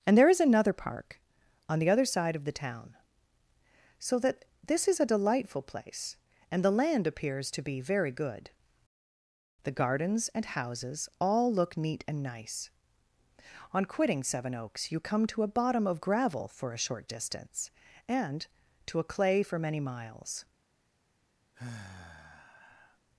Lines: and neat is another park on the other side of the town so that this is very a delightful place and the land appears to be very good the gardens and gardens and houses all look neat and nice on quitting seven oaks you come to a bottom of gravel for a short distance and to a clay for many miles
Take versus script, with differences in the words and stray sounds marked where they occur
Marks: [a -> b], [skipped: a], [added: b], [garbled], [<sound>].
and [neat -> there] is another park on the other side of the town so that this is [skipped: very] a delightful place and the land appears to be very good the gardens and [skipped: gardens and] houses all look neat and nice on quitting seven oaks you come to a bottom of gravel for a short distance and to a clay for many miles [sigh]